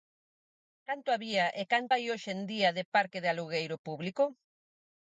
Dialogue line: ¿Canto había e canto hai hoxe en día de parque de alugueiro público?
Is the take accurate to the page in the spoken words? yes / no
yes